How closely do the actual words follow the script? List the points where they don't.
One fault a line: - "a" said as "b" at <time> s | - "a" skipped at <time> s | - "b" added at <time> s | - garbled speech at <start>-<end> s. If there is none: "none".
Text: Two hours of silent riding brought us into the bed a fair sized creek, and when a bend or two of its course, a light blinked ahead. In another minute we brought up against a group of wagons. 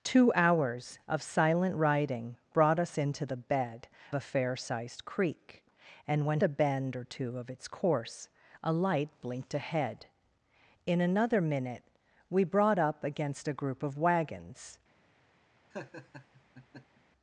none